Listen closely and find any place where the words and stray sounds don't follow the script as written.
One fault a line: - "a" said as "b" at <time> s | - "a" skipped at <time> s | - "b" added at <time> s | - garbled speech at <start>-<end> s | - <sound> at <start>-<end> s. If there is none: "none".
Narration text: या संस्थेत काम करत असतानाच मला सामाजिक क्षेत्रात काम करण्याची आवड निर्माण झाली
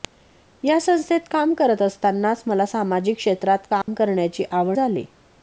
- dropout at 3.8-3.9 s
- "निर्माण" skipped at 4.8 s